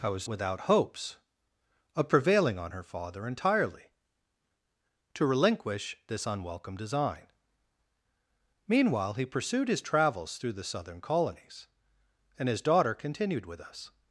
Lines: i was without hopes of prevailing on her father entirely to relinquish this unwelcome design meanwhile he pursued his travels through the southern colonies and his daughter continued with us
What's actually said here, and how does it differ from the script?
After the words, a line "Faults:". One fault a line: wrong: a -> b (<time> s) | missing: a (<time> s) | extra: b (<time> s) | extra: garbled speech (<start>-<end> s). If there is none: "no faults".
i was without hopes of prevailing on her father entirely to relinquish this unwelcome design meanwhile he pursued his travels through the southern colonies and his daughter continued with us
Faults:
no faults